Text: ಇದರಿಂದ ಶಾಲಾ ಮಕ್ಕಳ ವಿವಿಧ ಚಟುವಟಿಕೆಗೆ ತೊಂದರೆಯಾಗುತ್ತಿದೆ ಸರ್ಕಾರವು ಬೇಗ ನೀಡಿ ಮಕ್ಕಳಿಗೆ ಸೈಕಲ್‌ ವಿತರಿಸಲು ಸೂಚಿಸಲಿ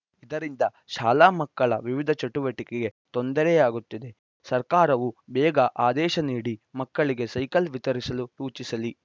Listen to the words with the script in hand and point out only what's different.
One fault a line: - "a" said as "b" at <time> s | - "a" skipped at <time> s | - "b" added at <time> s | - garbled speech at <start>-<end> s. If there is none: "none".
- "ಆದೇಶ" added at 5.8 s